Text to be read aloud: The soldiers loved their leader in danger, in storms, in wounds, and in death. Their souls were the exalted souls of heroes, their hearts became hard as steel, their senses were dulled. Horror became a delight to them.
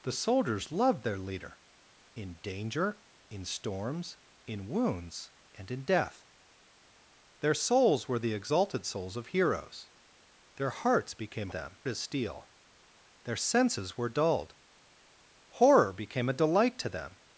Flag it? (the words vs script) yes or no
yes